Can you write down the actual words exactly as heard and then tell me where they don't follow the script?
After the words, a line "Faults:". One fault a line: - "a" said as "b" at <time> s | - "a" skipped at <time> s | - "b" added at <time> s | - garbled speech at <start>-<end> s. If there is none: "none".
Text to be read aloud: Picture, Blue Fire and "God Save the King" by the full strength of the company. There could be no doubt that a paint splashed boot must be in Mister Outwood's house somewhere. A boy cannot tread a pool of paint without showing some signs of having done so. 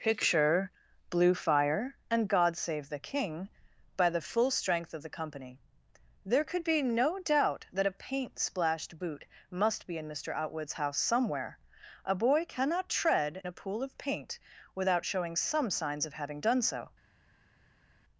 Picture, Blue Fire and "God Save the King" by the full strength of the company. There could be no doubt that a paint splashed boot must be in Mister Outwood's house somewhere. A boy cannot tread a pool of paint without showing some signs of having done so.
Faults:
none